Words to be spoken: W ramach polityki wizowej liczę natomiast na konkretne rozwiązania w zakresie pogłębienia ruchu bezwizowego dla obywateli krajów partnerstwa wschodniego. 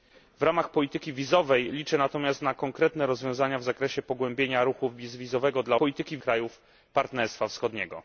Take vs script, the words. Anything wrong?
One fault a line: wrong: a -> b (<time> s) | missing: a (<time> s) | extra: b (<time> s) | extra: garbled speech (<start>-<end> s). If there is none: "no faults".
wrong: obywateli -> polityki (5.8 s)